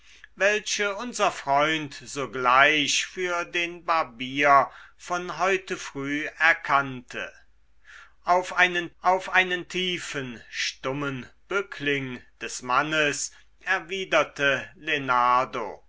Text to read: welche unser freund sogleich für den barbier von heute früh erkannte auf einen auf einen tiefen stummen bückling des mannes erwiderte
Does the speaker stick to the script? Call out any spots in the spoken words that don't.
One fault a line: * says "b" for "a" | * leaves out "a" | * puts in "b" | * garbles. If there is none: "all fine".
all fine